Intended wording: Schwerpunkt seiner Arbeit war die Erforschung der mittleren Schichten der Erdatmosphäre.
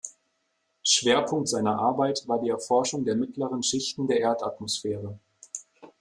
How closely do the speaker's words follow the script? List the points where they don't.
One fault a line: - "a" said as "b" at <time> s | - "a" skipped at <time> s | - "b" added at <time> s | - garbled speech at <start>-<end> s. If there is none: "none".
none